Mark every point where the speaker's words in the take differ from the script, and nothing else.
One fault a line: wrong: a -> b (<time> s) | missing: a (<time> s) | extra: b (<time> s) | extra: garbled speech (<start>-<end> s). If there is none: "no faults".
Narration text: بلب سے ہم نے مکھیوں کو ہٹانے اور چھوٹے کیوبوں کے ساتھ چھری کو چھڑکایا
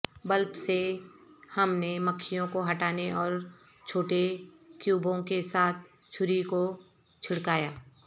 no faults